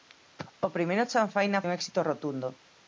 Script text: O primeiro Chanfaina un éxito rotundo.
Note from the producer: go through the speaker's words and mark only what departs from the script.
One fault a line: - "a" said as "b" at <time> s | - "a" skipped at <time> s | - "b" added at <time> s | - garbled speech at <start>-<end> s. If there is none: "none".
none